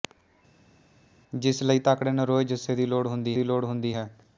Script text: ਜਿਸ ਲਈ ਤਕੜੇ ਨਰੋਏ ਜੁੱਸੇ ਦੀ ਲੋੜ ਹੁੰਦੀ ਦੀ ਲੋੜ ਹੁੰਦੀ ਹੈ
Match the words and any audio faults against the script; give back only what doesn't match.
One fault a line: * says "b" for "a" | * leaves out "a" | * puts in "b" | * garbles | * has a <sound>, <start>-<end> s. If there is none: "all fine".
all fine